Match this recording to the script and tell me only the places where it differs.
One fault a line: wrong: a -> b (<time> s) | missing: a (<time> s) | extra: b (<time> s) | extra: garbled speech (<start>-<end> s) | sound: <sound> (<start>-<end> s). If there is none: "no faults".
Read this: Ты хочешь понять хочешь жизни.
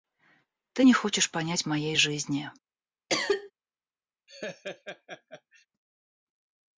extra: не (0.8 s)
wrong: хочешь -> моей (1.7 s)
sound: cough (3.1-3.5 s)
sound: laugh (4.3-5.7 s)